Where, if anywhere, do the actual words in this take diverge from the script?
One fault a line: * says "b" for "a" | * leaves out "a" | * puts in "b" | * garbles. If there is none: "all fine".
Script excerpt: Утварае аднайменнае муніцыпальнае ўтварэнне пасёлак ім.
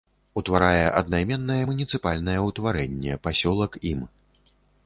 all fine